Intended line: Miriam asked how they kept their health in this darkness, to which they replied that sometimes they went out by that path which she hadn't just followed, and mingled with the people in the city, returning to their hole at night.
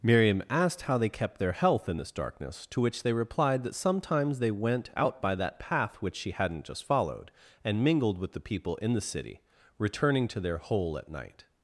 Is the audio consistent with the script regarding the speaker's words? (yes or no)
yes